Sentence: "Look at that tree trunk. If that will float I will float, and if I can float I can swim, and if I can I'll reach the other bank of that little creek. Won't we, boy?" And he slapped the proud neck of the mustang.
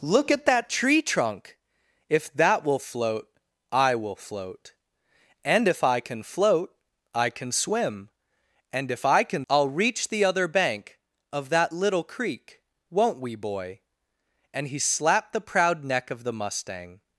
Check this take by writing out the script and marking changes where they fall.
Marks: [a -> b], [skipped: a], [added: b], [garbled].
"Look at that tree trunk. If that will float I will float, and if I can float I can swim, and if I can I'll reach the other bank of that little creek. Won't we, boy?" And he slapped the proud neck of the mustang.